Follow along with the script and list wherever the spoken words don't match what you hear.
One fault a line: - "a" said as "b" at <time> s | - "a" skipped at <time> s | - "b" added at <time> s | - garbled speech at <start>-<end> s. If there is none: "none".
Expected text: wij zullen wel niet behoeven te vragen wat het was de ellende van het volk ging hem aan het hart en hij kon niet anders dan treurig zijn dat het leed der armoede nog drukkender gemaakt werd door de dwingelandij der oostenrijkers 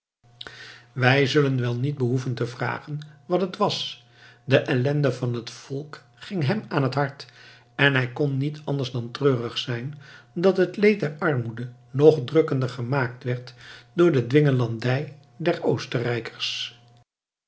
none